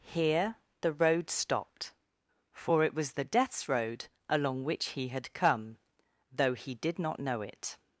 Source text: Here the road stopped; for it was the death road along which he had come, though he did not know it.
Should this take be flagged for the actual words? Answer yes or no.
yes